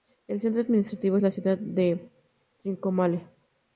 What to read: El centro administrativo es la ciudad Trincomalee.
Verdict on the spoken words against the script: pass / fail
fail